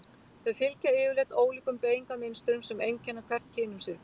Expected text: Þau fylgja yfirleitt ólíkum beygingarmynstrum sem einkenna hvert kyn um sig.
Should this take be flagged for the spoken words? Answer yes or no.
no